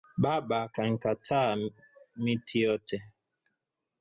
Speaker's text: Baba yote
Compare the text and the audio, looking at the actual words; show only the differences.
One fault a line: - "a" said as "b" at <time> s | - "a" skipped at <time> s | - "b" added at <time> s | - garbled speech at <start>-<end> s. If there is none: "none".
- "kankata miti" added at 0.7 s